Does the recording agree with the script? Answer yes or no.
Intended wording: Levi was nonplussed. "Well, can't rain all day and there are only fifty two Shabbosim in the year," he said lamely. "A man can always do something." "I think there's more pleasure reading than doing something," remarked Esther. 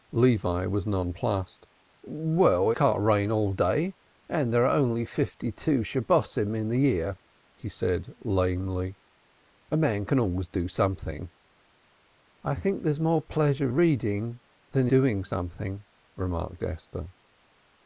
yes